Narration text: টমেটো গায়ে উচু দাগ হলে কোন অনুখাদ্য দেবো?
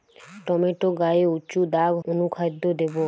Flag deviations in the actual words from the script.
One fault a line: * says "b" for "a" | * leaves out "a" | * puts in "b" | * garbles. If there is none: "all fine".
* leaves out "হলে কোন"